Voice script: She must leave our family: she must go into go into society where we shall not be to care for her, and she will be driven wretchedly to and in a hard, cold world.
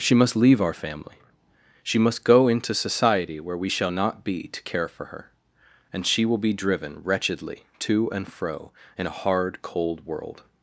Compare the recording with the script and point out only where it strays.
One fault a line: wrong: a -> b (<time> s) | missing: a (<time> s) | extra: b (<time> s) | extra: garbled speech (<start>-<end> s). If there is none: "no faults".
missing: go into (2.7 s)
extra: fro (8.3 s)